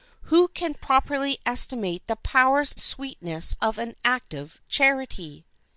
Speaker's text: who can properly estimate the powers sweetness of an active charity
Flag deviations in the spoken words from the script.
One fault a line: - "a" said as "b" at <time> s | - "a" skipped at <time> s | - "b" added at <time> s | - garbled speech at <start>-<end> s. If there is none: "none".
none